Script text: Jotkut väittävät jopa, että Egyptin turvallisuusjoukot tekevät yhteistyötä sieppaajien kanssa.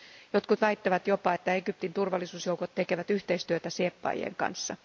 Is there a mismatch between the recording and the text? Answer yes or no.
no